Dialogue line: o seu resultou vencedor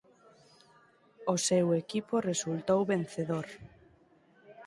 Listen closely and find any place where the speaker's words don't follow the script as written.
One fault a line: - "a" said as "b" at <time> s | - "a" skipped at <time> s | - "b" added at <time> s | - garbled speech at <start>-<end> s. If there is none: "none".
- "equipo" added at 1.8 s